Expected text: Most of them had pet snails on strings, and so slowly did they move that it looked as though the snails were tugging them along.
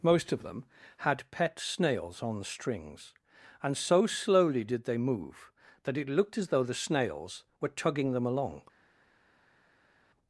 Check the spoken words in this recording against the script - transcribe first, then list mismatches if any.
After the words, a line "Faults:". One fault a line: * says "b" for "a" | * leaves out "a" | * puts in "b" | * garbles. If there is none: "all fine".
Most of them had pet snails on strings, and so slowly did they move that it looked as though the snails were tugging them along.
Faults:
all fine